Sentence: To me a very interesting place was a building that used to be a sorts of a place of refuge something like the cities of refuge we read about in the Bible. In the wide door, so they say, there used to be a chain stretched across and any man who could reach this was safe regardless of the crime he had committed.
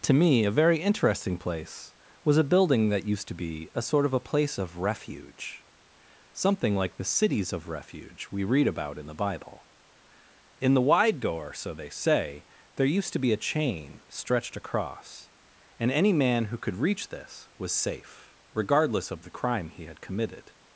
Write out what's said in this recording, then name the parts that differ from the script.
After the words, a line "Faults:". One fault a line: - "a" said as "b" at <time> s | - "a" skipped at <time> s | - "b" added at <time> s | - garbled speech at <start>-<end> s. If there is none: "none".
To me a very interesting place was a building that used to be a sort of a place of refuge something like the cities of refuge we read about in the Bible. In the wide door, so they say, there used to be a chain stretched across and any man who could reach this was safe regardless of the crime he had committed.
Faults:
- "sorts" said as "sort" at 3.8 s